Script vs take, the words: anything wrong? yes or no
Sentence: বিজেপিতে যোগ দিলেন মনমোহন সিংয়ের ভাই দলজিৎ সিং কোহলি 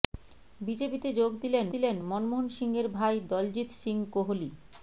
yes